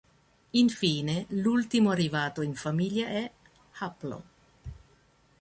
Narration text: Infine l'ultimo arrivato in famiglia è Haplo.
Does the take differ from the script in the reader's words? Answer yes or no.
no